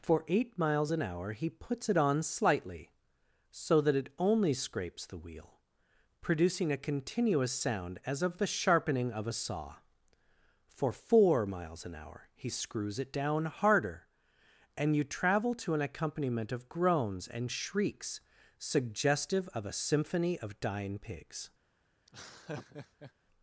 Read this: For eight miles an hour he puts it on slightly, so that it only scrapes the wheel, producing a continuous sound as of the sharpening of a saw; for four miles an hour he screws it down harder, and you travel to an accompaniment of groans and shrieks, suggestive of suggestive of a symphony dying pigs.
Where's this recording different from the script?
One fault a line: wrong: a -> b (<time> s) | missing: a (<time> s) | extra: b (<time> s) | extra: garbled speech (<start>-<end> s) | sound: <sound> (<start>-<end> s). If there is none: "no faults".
missing: suggestive of (19.6 s)
extra: of (20.4 s)
sound: laugh (22.1-23.1 s)